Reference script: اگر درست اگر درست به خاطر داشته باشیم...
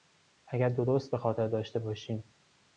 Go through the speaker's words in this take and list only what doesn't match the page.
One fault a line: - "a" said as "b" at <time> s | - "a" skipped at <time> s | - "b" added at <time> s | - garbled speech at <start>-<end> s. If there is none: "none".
- "اگر درست" skipped at 1.1 s